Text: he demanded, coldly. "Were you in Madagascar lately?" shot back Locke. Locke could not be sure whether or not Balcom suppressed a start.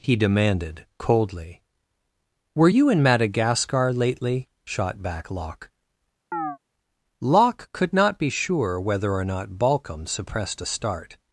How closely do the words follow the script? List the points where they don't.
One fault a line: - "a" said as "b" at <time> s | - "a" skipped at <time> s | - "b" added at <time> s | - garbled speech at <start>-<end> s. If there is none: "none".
none